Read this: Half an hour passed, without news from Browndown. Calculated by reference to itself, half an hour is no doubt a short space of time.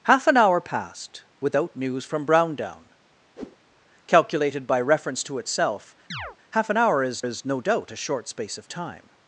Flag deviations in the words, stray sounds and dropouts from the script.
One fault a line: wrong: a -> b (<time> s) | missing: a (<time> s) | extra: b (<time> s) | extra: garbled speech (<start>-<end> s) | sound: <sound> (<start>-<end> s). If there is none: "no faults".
sound: whoosh (3.4-3.6 s)
sound: chirp (6.1-6.4 s)
extra: is (7.2 s)